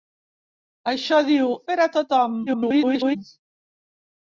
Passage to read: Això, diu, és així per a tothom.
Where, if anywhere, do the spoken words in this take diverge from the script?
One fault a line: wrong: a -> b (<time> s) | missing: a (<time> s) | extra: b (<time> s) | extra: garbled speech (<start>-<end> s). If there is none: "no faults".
missing: és així (1.5 s)
extra: garbled speech (2.5-3.2 s)